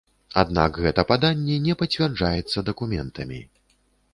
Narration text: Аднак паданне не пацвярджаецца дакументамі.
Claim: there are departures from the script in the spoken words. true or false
true